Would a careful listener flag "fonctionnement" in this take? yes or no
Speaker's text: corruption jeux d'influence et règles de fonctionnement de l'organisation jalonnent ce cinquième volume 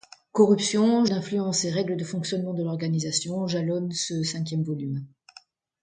no